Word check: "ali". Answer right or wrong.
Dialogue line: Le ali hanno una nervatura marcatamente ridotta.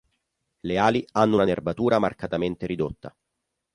right